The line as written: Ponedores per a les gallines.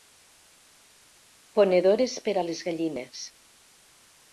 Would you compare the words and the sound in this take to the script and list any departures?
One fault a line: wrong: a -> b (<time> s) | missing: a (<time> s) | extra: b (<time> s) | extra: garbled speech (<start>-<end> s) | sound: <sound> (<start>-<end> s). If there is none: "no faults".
no faults